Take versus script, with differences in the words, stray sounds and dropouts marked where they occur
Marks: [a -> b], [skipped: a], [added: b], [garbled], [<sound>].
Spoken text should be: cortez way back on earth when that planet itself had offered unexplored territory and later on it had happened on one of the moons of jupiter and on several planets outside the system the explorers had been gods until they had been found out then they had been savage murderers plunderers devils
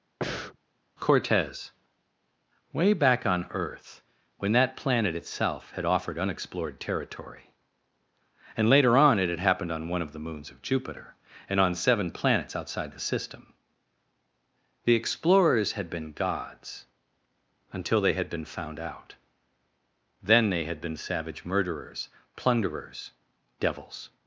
[breath] cortez way back on earth when that planet itself had offered unexplored territory and later on it had happened on one of the moons of jupiter and on [several -> seven] planets outside the system the explorers had been gods until they had been found out then they had been savage murderers plunderers devils